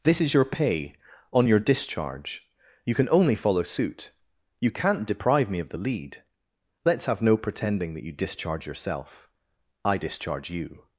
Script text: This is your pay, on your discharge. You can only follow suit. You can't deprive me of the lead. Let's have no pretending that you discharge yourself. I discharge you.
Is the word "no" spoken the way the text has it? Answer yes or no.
yes